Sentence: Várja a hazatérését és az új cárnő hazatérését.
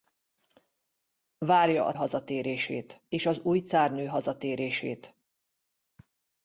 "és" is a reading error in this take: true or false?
false